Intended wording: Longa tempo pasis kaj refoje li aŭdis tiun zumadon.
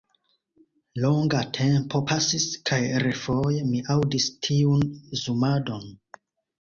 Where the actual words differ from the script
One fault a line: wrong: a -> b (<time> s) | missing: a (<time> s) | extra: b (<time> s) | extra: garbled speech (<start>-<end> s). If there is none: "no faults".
wrong: li -> mi (3.7 s)